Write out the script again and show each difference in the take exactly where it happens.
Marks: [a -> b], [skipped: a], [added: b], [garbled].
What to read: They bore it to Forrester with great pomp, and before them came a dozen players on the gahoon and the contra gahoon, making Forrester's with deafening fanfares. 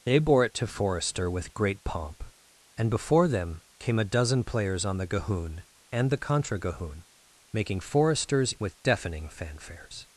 They bore it to Forrester with great pomp, and before them came a dozen players on the gahoon and the contra gahoon, making Forrester's with deafening fanfares.